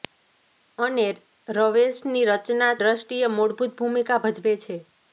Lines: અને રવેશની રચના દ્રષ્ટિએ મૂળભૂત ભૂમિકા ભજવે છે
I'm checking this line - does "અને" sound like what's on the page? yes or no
yes